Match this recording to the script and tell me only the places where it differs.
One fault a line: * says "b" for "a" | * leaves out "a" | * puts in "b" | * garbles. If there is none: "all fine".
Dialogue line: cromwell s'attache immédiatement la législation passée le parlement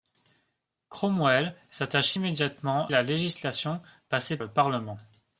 all fine